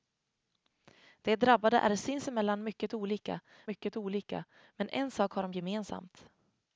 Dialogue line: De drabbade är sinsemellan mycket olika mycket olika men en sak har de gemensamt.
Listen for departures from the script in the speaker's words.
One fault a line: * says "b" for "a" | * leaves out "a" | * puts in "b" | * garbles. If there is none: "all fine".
all fine